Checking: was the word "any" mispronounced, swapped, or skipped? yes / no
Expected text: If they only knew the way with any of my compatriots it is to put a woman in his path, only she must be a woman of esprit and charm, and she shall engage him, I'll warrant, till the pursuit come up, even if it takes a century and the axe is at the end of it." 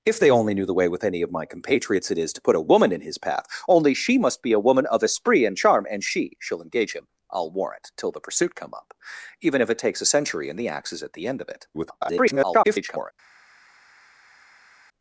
no